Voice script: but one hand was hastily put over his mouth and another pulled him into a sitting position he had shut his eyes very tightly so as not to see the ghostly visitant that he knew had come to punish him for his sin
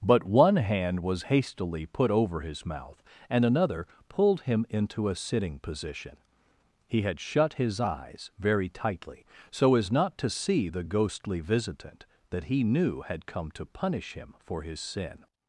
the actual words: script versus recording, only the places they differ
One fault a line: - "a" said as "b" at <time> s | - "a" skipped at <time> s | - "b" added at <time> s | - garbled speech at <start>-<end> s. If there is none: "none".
none